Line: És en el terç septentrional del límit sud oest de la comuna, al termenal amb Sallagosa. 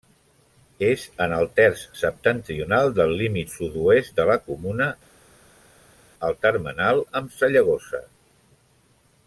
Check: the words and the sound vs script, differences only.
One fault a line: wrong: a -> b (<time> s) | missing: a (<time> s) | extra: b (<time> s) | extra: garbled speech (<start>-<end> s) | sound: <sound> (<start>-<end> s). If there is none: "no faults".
no faults